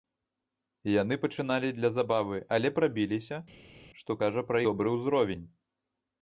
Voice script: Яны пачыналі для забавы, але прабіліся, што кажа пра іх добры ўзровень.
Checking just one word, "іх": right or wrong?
wrong